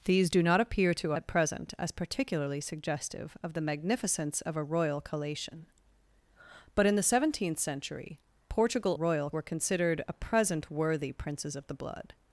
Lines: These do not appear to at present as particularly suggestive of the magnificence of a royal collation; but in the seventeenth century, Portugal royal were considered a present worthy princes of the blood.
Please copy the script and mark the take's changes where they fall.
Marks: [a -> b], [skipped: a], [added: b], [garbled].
These do not appear to at present as particularly suggestive of the magnificence of a royal collation; but in the seventeenth century, Portugal royal were considered a present worthy princes of the blood.